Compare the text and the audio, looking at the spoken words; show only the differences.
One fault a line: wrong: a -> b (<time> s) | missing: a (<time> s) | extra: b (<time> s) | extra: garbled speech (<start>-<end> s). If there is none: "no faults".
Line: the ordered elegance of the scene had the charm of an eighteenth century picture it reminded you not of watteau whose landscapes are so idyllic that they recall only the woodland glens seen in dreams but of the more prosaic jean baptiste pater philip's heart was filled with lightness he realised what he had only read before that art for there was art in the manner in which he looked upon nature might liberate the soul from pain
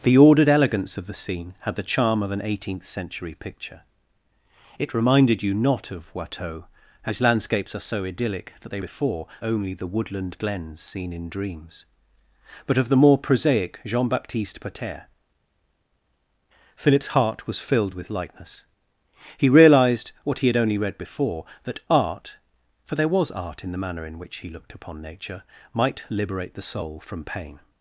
wrong: recall -> before (8.8 s)